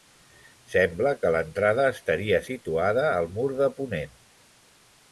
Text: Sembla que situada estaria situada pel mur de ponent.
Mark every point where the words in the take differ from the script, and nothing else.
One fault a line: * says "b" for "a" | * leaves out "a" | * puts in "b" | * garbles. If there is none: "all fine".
* says "l'entrada" for "situada"
* says "al" for "pel"